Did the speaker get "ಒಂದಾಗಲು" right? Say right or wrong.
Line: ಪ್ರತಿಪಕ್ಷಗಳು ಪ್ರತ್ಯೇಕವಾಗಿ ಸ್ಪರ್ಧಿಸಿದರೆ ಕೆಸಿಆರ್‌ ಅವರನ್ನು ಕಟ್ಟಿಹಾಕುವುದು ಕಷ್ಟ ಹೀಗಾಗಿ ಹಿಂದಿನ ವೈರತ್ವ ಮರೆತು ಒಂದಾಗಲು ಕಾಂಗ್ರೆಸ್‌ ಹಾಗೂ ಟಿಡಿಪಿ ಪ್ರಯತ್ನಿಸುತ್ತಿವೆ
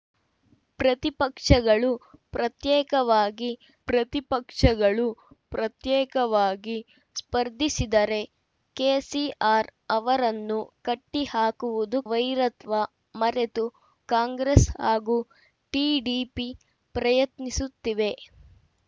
wrong